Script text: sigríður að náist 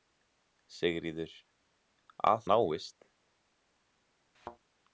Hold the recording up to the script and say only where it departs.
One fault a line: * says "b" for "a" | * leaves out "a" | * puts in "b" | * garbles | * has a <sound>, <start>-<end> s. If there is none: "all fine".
* has a thud, 4.3-4.6 s